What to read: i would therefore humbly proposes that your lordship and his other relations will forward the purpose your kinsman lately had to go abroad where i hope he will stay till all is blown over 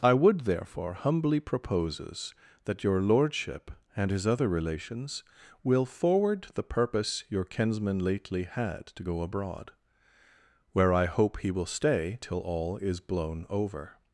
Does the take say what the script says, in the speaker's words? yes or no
yes